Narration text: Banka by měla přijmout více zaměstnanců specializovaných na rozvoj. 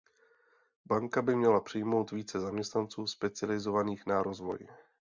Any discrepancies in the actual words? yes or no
no